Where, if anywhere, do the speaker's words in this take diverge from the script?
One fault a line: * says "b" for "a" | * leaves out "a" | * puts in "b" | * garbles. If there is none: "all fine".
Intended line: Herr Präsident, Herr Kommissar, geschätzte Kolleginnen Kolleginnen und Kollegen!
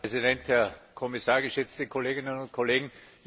* leaves out "Kolleginnen"